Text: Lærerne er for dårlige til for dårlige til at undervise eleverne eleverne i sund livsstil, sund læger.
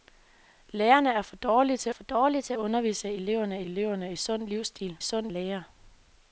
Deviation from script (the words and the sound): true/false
false